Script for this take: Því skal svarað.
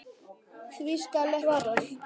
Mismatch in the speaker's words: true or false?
false